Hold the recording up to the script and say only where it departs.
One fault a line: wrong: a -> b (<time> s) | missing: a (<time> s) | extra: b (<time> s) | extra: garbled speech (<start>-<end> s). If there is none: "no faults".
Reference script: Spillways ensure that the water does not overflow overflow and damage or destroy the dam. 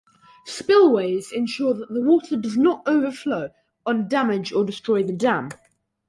missing: overflow (3.5 s)